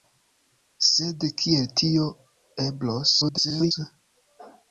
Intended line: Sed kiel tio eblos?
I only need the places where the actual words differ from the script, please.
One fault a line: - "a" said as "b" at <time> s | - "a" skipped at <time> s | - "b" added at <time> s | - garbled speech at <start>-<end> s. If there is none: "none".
- garbled speech at 3.2-3.7 s